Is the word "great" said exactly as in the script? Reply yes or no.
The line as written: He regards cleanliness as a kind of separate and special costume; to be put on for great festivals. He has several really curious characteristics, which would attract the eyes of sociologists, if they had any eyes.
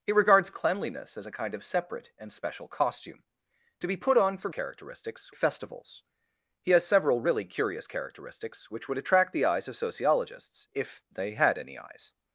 no